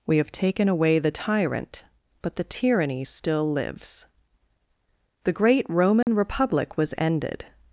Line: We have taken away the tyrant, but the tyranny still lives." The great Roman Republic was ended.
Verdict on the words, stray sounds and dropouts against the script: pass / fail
fail